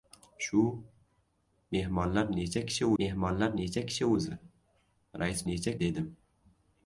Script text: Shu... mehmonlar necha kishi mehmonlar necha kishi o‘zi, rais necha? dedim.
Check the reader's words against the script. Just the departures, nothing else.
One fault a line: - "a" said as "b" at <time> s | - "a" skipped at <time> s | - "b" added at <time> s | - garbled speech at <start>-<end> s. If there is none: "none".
none